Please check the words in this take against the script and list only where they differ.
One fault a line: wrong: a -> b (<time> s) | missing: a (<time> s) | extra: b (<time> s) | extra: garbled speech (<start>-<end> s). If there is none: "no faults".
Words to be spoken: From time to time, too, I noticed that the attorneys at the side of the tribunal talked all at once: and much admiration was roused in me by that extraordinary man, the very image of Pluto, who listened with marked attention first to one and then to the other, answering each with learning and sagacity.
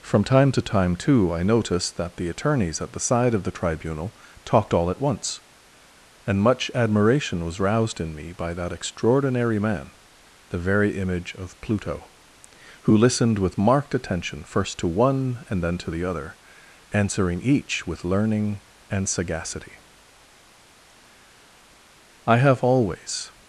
extra: I have always (22.3 s)